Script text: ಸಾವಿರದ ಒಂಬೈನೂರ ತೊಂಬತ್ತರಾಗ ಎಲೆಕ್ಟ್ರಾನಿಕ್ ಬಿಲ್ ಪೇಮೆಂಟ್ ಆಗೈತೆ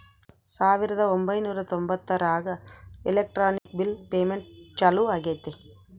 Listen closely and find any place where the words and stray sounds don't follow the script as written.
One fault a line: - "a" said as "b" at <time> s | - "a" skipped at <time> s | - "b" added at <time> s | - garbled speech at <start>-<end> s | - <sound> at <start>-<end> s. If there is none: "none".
- dropout at 3.6-3.7 s
- "ಚಾಲೂ" added at 4.8 s